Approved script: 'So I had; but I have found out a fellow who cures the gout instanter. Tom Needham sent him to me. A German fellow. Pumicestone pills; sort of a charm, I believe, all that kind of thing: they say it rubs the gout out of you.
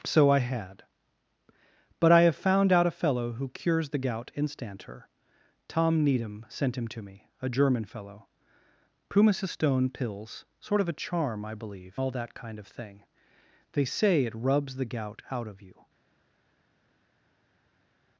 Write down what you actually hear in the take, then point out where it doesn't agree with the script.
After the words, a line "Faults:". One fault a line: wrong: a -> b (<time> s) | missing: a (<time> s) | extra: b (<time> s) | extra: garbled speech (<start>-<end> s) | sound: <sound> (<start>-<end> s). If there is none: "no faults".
'So I had; but I have found out a fellow who cures the gout instanter. Tom Needham sent him to me. A German fellow. Pumicestone pills; sort of a charm, I believe, all that kind of thing: they say it rubs the gout out of you.
Faults:
no faults